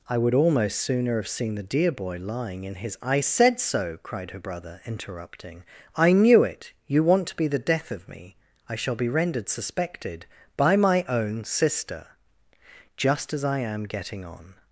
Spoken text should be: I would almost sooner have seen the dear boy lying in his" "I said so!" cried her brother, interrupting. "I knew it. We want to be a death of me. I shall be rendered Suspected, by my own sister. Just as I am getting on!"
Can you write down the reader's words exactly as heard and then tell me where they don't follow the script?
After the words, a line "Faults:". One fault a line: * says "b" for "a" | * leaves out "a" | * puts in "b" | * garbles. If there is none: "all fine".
I would almost sooner have seen the dear boy lying in his" "I said so!" cried her brother, interrupting. "I knew it. You want to be the death of me. I shall be rendered Suspected, by my own sister. Just as I am getting on!"
Faults:
* says "You" for "We"
* says "the" for "a"